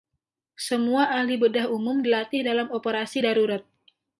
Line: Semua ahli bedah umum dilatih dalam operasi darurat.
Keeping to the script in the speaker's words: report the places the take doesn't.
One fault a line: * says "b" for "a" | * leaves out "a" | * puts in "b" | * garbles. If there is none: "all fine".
all fine